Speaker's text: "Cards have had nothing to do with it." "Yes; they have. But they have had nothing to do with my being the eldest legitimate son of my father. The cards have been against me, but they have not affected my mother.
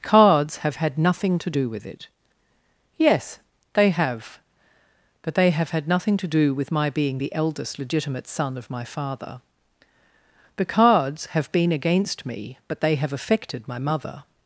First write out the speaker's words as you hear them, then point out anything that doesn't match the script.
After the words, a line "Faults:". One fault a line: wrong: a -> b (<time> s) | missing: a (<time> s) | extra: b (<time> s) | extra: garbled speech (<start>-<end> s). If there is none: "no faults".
"Cards have had nothing to do with it." "Yes; they have. But they have had nothing to do with my being the eldest legitimate son of my father. The cards have been against me, but they have affected my mother.
Faults:
missing: not (13.1 s)